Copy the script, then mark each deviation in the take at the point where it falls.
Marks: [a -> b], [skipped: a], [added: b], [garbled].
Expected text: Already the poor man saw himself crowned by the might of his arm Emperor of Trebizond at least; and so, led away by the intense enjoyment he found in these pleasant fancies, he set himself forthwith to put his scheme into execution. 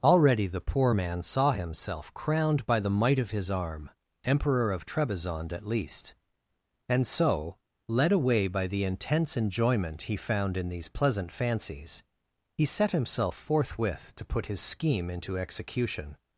Already the poor man saw himself crowned by the might of his arm Emperor of Trebizond at least; and so, led away by the intense enjoyment he found in these pleasant fancies, he set himself forthwith to put his scheme into execution.